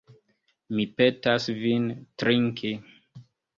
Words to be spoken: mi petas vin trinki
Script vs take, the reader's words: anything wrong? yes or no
no